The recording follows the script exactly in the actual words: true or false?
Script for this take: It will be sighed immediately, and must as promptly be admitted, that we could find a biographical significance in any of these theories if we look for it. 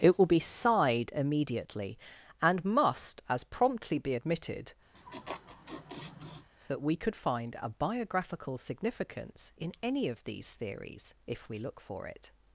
true